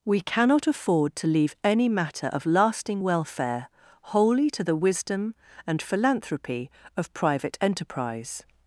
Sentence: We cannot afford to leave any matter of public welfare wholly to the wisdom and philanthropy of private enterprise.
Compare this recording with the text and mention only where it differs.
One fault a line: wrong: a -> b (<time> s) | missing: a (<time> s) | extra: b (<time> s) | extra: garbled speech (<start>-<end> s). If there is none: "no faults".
wrong: public -> lasting (2.5 s)